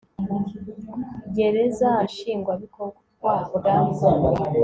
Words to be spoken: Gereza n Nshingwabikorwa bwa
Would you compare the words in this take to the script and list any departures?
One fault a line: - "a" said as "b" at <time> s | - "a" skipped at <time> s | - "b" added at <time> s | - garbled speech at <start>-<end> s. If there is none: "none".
none